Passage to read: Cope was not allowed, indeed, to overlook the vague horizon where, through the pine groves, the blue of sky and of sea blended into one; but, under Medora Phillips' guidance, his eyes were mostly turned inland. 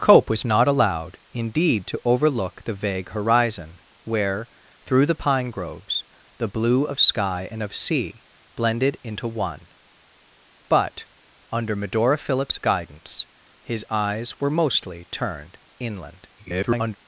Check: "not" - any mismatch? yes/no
no